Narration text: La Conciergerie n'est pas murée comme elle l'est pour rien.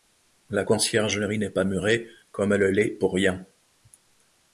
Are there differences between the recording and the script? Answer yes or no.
no